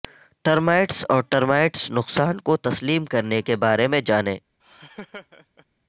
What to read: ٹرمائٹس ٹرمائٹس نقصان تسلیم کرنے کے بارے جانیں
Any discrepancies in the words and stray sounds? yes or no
yes